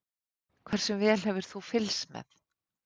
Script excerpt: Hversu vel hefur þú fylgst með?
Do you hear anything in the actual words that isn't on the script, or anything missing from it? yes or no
no